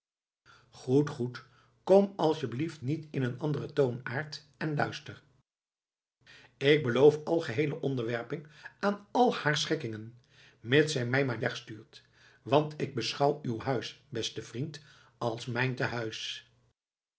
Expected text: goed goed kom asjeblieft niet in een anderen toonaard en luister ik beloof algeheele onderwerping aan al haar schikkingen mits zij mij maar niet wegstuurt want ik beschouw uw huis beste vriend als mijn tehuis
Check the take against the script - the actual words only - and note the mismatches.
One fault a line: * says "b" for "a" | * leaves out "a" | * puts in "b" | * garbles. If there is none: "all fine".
* leaves out "niet"